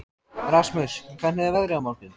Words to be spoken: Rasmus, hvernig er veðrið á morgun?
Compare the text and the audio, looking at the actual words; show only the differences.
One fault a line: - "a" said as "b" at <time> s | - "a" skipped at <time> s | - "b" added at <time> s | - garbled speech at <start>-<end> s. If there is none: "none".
none